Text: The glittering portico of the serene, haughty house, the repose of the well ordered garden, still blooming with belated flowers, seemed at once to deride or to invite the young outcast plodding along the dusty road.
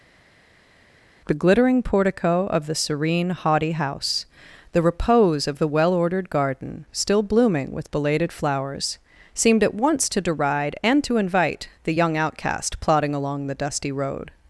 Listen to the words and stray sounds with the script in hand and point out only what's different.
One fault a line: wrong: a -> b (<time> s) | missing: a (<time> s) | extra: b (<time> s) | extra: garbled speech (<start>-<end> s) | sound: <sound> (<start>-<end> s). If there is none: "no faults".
wrong: or -> and (10.8 s)